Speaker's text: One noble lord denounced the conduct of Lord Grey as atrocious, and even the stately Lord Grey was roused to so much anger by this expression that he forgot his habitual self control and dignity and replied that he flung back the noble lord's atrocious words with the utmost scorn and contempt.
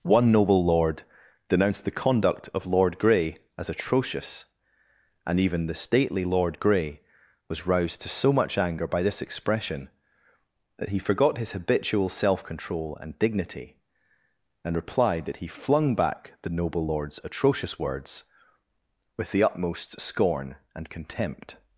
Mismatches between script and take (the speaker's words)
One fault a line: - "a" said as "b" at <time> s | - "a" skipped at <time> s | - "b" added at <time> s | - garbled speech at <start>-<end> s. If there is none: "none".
none